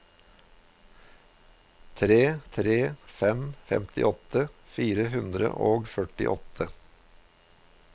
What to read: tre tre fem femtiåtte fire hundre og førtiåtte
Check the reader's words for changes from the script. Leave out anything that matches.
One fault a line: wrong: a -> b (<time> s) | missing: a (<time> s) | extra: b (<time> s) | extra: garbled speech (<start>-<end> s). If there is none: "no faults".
no faults